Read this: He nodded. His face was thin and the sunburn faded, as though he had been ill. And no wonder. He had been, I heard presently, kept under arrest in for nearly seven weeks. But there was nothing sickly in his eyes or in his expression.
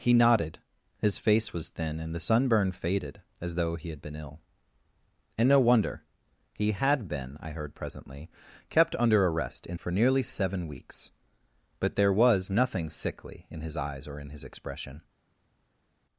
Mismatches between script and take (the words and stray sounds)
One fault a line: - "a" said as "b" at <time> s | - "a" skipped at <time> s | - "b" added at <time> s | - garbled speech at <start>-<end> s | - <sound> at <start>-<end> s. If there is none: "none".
none